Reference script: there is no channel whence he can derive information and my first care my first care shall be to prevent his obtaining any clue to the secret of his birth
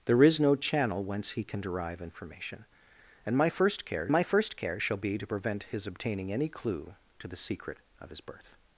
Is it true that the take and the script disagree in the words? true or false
false